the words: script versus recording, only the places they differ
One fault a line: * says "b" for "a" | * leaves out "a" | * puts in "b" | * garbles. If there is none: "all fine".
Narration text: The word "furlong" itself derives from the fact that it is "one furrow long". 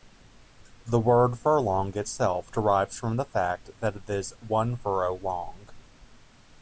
all fine